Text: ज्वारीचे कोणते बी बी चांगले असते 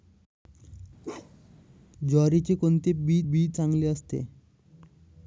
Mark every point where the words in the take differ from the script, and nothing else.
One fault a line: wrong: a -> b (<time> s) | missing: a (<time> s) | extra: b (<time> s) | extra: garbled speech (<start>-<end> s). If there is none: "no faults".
no faults